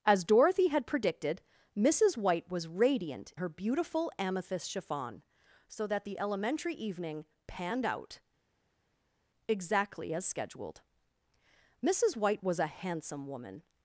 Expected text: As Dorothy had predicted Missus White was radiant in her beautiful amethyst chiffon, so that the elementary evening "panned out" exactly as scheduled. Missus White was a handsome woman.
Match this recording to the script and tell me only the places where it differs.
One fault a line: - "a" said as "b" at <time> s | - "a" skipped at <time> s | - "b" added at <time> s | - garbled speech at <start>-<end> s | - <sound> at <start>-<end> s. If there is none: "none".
- "in" skipped at 3.3 s